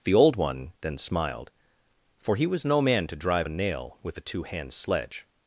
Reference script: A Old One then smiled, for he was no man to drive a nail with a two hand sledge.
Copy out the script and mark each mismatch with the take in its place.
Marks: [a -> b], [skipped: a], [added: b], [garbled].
[A -> The] Old One then smiled, for he was no man to drive a nail with a two hand sledge.